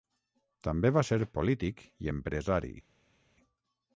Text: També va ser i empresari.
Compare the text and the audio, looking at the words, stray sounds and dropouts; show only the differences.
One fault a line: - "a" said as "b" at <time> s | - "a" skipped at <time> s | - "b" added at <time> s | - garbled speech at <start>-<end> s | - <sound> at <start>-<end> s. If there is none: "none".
- "polític" added at 1.4 s